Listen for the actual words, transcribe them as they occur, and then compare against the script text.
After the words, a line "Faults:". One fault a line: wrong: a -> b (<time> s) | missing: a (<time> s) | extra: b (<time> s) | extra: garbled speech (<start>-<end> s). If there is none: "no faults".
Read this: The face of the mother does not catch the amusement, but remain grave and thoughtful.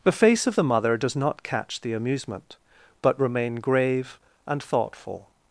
The face of the mother does not catch the amusement, but remain grave and thoughtful.
Faults:
no faults